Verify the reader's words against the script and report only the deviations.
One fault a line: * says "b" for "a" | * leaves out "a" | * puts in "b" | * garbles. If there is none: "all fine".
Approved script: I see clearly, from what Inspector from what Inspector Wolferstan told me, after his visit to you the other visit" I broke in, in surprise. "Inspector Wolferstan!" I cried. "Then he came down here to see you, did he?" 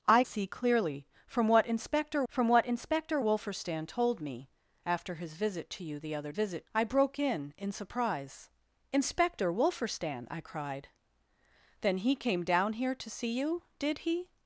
all fine